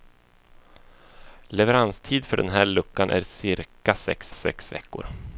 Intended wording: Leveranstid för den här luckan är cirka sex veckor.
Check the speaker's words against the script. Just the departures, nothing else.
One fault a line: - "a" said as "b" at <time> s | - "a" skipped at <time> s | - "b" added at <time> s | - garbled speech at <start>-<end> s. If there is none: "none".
- "sex" added at 4.3 s